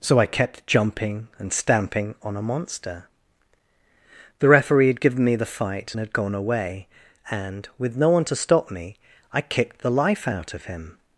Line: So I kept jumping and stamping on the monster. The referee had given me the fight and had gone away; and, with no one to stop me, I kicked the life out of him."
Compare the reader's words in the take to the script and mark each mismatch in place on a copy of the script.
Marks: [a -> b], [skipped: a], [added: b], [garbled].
So I kept jumping and stamping on [the -> a] monster. The referee had given me the fight and had gone away; and, with no one to stop me, I kicked the life out of him."